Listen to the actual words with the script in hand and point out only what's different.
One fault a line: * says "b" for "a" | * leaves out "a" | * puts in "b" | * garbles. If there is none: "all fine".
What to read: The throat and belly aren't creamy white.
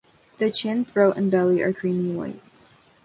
* puts in "chin"
* says "are" for "aren't"